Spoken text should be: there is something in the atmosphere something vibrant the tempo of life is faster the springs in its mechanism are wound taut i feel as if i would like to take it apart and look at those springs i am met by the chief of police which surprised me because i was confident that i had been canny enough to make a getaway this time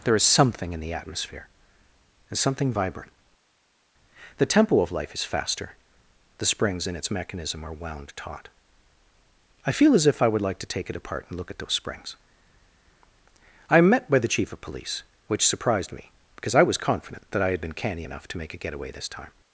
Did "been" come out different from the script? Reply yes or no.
no